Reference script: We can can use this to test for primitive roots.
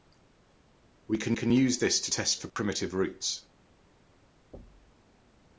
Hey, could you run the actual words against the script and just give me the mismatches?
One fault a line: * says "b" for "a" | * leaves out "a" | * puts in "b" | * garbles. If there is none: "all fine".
all fine